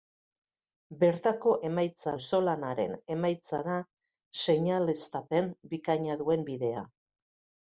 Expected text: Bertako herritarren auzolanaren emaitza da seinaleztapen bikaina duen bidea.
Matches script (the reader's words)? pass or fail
fail